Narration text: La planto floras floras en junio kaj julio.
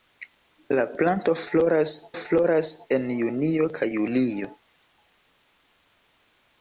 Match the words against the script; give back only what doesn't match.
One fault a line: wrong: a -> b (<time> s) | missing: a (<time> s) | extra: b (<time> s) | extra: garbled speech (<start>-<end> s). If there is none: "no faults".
no faults